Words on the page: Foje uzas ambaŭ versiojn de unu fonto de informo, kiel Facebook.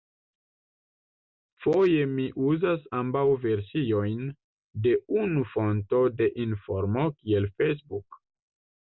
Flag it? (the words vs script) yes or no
yes